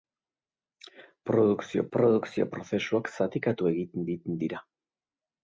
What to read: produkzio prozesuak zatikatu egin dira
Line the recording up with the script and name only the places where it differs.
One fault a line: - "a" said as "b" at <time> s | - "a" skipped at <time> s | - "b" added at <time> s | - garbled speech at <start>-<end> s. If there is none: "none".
- "produkzio" added at 2.0 s
- "egin" added at 4.1 s